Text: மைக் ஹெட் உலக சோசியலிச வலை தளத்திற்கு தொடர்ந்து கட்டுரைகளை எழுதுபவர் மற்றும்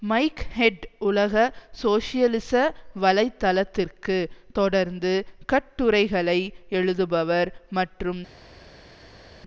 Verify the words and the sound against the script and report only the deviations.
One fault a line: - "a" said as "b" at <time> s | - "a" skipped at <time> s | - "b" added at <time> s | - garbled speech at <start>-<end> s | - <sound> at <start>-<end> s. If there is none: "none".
none